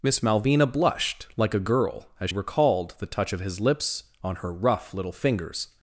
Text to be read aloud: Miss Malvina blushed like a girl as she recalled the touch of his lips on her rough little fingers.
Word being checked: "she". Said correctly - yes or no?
no